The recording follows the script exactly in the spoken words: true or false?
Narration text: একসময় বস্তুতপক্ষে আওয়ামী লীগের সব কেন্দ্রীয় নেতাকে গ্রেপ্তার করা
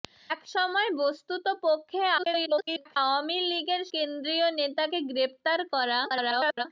false